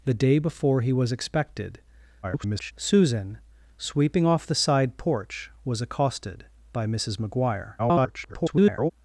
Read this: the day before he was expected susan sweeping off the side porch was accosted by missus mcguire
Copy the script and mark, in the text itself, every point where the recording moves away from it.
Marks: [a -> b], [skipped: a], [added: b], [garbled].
the day before he was expected [garbled] susan sweeping off the side porch was accosted by missus mcguire [garbled]